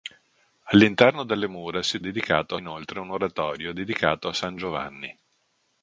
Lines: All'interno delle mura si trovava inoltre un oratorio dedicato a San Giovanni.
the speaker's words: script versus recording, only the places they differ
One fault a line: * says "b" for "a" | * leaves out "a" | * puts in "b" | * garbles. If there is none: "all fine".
* says "dedicato" for "trovava"